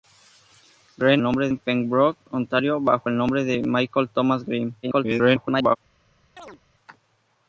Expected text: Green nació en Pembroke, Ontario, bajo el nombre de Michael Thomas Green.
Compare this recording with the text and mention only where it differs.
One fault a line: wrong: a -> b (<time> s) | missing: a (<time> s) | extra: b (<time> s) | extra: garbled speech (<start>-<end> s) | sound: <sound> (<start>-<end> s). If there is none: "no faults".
wrong: nació -> nombre (1.2 s)
extra: garbled speech (4.8-5.8 s)
sound: chirp (6.4-6.6 s)